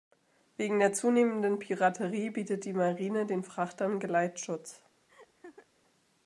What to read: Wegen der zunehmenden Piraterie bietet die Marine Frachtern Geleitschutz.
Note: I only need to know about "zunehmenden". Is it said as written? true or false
true